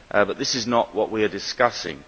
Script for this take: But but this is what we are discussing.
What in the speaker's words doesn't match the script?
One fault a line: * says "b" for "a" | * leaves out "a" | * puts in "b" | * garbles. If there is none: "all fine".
* leaves out "but"
* puts in "not"